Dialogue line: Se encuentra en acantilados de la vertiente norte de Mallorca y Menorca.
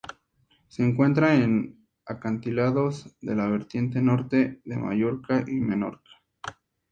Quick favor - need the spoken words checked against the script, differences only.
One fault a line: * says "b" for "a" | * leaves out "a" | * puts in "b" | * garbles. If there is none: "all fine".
all fine